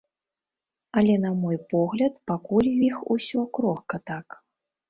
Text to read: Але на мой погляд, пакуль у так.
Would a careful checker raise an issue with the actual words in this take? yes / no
yes